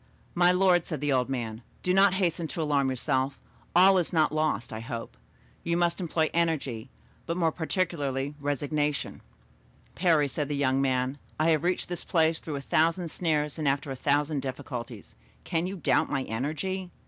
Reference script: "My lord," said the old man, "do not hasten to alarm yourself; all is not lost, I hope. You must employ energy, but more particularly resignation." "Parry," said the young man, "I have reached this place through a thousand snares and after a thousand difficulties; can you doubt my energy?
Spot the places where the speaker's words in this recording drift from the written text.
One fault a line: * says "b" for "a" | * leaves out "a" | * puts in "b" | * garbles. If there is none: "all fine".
all fine